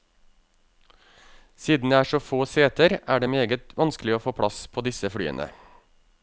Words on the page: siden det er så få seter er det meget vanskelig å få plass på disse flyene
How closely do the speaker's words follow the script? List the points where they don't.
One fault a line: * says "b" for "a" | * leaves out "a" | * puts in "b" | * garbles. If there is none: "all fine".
all fine